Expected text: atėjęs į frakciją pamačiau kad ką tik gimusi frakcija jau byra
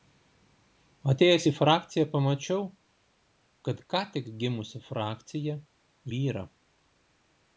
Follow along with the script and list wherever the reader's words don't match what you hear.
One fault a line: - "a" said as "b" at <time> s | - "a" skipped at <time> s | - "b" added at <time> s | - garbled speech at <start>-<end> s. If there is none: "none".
- "jau" skipped at 5.6 s